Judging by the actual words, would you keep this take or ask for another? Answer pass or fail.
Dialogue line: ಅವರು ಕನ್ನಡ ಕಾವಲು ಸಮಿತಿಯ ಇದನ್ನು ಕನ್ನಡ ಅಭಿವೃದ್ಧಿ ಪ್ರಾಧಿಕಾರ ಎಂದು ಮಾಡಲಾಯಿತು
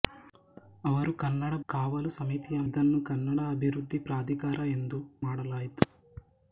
pass